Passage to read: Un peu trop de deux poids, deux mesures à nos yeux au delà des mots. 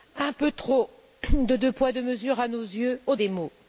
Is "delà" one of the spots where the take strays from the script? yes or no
yes